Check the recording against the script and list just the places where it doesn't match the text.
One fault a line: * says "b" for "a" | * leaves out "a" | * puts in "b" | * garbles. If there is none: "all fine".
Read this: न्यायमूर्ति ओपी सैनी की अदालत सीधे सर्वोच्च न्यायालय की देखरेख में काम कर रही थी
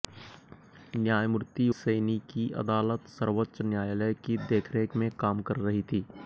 * leaves out "ओपी"
* leaves out "सीधे"